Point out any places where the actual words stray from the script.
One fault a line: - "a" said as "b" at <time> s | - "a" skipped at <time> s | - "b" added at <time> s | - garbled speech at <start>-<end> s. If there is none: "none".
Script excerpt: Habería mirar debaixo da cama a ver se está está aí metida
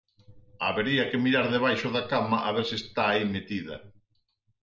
- "que" added at 1.1 s
- "está" skipped at 3.0 s